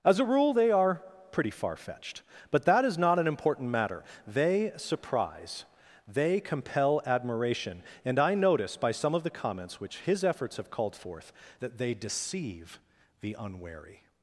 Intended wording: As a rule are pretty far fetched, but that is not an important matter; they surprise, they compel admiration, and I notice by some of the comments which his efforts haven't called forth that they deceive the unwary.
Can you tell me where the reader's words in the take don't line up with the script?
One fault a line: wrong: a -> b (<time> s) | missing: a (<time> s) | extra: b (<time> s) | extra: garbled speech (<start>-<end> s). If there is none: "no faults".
extra: they (0.5 s)
wrong: haven't -> have (10.6 s)